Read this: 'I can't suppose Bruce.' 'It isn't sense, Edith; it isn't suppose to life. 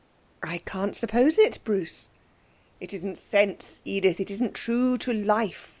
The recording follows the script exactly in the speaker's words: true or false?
false